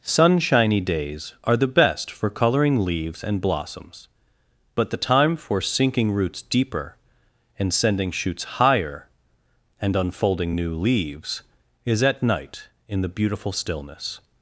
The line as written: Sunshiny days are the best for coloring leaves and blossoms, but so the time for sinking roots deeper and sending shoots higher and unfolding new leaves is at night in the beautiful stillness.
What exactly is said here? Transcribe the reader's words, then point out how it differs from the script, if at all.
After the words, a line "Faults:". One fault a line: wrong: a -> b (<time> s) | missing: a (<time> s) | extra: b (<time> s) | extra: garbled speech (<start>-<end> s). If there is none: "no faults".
Sunshiny days are the best for coloring leaves and blossoms, but the time for sinking roots deeper and sending shoots higher and unfolding new leaves is at night in the beautiful stillness.
Faults:
missing: so (4.9 s)